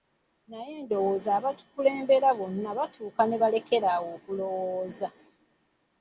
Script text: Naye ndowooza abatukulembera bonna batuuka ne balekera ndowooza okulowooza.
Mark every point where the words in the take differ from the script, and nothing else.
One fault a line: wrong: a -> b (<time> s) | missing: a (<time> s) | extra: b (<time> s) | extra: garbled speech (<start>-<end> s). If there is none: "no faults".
wrong: ndowooza -> awo (3.9 s)